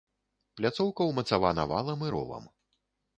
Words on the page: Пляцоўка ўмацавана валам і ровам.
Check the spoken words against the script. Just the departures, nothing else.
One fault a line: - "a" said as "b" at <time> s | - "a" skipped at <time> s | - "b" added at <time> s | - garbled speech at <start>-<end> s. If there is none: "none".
none